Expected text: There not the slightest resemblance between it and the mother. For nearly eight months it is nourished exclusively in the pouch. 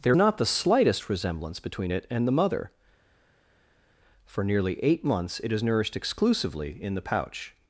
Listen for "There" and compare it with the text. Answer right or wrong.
right